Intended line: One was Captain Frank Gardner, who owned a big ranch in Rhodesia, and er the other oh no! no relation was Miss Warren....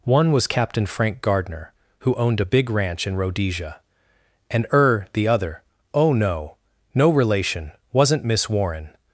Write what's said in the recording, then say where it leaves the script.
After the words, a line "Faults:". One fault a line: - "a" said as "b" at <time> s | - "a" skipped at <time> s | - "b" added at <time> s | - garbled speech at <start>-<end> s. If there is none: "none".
One was Captain Frank Gardner, who owned a big ranch in Rhodesia, and er the other oh no! no relation wasn't Miss Warren....
Faults:
- "was" said as "wasn't" at 7.9 s